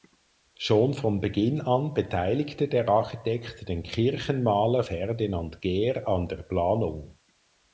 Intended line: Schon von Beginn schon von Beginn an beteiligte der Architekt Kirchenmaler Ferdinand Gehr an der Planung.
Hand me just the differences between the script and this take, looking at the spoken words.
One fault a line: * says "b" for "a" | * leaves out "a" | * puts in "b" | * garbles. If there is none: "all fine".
* leaves out "schon von Beginn"
* puts in "den"